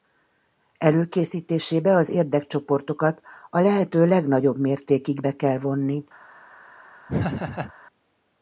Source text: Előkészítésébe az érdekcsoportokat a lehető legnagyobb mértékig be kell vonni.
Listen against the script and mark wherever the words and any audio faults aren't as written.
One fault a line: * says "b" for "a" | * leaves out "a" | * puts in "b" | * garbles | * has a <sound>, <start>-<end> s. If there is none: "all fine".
* has a laugh, 7.1-7.7 s